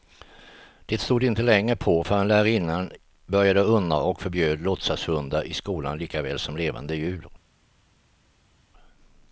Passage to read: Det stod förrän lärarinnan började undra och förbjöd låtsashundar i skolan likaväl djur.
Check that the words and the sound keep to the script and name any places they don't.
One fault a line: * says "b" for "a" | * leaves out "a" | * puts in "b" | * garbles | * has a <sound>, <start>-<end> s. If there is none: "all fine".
* puts in "inte länge på"
* puts in "som levande"